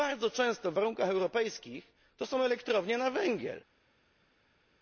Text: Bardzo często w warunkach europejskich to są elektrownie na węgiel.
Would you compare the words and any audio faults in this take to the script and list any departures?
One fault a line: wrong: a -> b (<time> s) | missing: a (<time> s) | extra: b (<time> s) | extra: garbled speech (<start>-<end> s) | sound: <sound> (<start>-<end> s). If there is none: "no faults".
no faults